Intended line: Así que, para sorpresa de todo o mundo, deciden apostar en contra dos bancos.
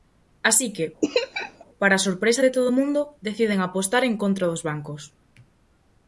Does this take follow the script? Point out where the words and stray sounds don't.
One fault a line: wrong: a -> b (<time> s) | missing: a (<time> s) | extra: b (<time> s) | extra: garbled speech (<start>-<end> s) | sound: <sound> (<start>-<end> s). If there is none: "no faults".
sound: laugh (1.0-1.6 s)